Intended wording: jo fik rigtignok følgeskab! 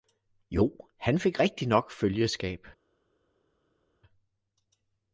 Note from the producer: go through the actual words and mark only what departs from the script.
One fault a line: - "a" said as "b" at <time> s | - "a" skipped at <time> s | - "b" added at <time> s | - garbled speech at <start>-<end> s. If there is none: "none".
- "han" added at 1.0 s